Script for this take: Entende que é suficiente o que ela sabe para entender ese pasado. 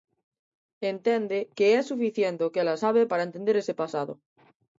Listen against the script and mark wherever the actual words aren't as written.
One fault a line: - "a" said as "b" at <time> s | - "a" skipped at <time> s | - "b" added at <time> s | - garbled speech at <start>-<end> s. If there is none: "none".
none